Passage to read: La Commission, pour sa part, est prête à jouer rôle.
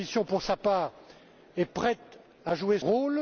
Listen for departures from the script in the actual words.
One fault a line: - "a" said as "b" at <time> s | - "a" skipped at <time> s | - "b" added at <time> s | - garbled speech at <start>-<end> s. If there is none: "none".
none